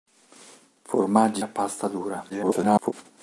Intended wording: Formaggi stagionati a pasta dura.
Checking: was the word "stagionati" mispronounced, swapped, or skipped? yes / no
yes